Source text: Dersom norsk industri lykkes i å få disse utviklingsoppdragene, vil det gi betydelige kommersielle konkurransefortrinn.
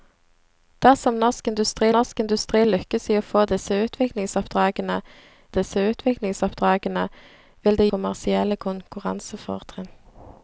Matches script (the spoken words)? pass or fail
fail